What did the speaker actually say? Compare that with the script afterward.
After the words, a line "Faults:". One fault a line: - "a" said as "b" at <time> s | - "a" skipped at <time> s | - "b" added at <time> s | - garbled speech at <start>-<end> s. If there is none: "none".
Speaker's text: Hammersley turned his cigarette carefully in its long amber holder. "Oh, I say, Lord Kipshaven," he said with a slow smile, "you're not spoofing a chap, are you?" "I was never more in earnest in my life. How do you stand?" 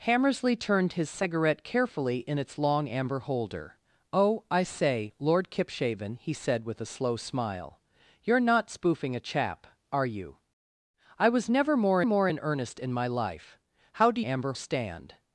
Hammersley turned his cigarette carefully in its long amber holder. "Oh, I say, Lord Kipshaven," he said with a slow smile, "you're not spoofing a chap, are you?" "I was never more more in earnest in my life. How do amber stand?"
Faults:
- "more" added at 12.0 s
- "you" said as "amber" at 14.2 s